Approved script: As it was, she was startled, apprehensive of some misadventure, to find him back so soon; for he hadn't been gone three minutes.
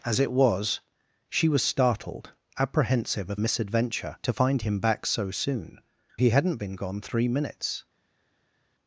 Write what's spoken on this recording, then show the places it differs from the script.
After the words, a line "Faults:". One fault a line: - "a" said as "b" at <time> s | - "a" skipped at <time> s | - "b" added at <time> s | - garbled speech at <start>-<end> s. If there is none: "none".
As it was, she was startled, apprehensive of misadventure, to find him back so soon; he hadn't been gone three minutes.
Faults:
- "some" skipped at 3.4 s
- "for" skipped at 5.8 s